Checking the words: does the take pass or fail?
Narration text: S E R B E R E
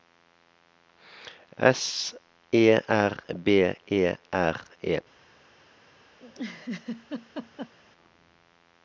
pass